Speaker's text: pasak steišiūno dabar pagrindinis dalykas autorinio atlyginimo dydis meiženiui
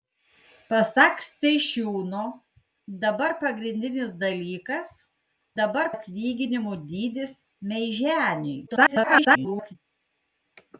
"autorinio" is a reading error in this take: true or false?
true